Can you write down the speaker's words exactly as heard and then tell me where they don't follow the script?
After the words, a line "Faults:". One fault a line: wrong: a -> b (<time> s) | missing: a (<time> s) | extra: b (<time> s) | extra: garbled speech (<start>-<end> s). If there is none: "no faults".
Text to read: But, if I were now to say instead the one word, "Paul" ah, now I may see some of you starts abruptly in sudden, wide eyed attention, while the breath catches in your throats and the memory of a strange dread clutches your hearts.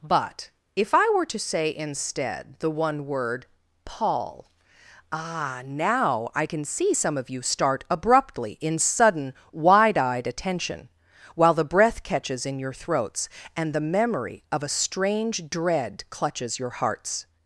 But, if I were to say instead the one word, "Paul" ah, now I can see some of you start abruptly in sudden, wide eyed attention, while the breath catches in your throats and the memory of a strange dread clutches your hearts.
Faults:
missing: now (1.2 s)
wrong: may -> can (6.4 s)
wrong: starts -> start (7.4 s)